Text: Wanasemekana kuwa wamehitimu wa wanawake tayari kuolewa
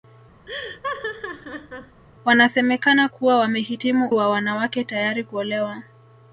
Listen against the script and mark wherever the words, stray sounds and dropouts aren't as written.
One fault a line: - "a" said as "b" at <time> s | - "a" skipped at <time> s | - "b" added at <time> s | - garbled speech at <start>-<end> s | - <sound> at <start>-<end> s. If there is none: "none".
- laugh at 0.5-2.0 s